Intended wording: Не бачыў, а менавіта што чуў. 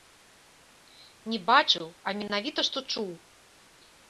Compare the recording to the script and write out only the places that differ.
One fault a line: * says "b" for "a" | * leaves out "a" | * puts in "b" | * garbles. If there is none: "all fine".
all fine